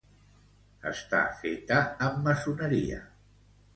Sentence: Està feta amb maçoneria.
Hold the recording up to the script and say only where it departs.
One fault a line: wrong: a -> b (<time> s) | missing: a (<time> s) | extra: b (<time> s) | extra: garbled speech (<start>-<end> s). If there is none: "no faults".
no faults